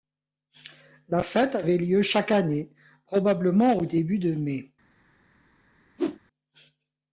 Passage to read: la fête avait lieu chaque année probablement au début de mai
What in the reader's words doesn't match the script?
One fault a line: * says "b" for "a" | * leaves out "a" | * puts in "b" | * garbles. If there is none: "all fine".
all fine